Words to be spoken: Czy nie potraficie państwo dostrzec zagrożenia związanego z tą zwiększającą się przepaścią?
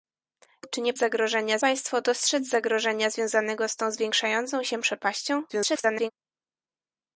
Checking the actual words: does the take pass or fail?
fail